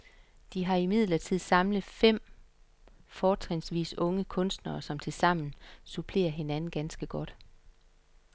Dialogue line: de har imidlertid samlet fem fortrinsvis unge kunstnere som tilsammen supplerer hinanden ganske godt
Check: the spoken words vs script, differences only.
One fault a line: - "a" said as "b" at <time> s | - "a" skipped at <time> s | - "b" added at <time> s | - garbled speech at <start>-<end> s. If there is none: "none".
none